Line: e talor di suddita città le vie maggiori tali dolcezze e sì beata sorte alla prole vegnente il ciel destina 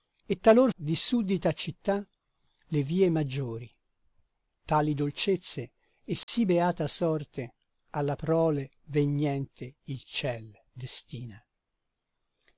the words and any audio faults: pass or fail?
fail